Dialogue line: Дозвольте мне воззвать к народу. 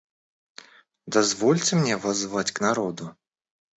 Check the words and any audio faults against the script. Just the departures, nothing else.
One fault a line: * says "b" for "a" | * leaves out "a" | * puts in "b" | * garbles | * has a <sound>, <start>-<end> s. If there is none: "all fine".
all fine